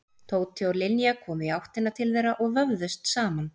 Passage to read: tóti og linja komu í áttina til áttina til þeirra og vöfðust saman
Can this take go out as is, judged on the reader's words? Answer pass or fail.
fail